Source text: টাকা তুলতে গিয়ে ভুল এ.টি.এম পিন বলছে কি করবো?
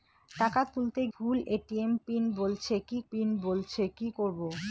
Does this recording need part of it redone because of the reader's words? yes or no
yes